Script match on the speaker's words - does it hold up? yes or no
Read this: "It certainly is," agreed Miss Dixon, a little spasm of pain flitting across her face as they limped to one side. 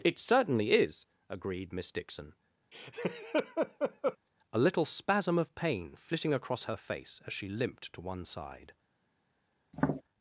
no